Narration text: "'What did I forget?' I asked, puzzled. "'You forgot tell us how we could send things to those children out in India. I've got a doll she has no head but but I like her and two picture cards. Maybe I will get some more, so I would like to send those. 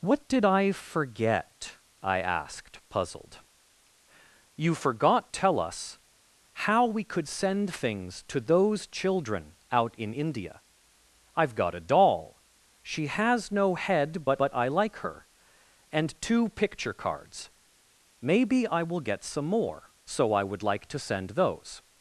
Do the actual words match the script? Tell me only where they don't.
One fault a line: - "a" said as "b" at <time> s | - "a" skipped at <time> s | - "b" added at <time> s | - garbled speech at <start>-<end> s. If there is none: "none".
none